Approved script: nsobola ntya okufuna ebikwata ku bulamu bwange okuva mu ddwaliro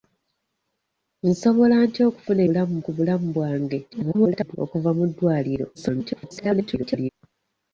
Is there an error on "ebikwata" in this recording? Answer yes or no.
yes